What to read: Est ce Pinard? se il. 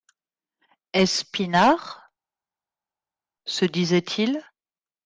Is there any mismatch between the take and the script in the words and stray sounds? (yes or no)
yes